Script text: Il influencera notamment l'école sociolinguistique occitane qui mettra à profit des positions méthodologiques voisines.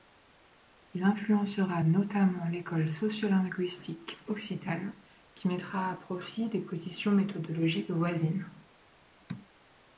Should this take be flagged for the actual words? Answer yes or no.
no